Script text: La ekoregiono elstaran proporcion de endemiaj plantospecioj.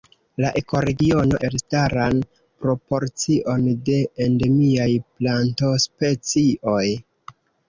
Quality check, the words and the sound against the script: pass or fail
pass